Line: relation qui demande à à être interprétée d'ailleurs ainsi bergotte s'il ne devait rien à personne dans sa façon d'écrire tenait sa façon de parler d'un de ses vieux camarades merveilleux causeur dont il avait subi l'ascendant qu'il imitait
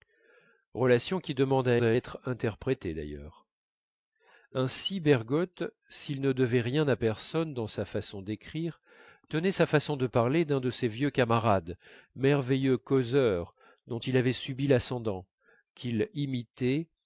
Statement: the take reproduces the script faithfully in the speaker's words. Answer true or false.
true